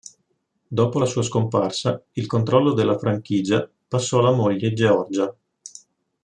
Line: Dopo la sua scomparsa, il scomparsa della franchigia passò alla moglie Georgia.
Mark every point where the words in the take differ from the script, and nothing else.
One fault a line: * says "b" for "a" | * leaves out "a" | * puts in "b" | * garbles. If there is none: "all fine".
* says "controllo" for "scomparsa"